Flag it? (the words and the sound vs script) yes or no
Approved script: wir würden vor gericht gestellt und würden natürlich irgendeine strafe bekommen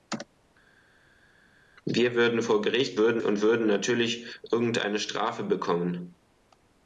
yes